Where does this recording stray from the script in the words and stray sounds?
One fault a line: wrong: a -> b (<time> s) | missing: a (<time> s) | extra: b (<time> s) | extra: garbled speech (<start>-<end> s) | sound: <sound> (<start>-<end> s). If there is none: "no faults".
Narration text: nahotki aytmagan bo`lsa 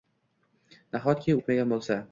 no faults